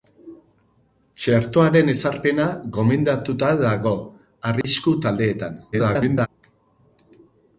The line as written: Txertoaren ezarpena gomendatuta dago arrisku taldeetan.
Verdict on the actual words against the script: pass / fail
fail